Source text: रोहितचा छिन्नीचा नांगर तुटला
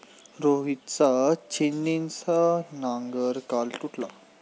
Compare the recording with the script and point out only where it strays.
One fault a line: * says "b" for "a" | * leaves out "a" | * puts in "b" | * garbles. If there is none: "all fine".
* puts in "काल"